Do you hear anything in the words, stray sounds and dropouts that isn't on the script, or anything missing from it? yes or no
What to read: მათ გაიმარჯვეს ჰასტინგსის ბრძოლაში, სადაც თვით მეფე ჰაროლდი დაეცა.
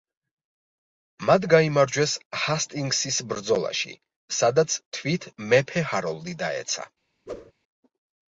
yes